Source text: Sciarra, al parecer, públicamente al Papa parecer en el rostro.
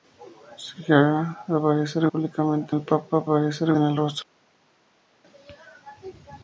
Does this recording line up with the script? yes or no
yes